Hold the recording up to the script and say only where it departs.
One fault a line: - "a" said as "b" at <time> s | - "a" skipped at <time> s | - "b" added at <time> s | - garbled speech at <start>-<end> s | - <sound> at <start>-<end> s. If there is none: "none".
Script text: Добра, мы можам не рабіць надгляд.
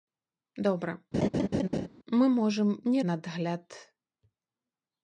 - laugh at 1.1-1.9 s
- "рабіць" skipped at 3.0 s